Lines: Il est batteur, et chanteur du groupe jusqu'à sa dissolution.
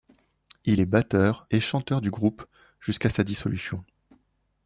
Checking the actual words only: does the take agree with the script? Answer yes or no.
yes